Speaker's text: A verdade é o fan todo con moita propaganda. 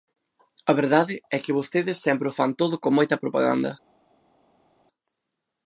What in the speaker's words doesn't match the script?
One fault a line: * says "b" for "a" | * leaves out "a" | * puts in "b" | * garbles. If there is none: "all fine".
* puts in "que vostedes sempre"